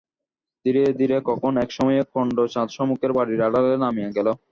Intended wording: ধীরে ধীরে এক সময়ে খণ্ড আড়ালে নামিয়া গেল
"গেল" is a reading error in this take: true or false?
false